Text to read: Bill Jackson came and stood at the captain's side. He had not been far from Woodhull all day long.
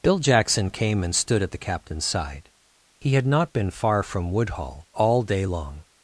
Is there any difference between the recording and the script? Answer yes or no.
no